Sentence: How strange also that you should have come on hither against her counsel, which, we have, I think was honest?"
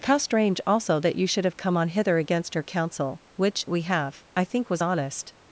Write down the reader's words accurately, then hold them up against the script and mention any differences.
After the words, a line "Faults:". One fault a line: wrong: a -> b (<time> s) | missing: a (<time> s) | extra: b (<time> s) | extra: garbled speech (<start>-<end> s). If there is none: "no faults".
How strange also that you should have come on hither against her counsel, which, we have, I think was honest?"
Faults:
no faults